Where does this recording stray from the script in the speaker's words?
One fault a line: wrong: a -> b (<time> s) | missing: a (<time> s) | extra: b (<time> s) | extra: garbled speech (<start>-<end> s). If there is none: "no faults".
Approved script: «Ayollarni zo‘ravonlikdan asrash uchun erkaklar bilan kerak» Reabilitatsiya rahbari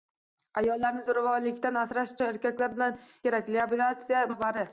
no faults